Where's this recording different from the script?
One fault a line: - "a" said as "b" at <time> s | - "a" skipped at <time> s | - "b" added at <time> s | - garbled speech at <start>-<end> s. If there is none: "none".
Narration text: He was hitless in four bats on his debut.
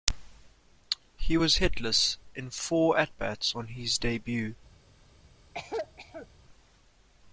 - "at" added at 3.0 s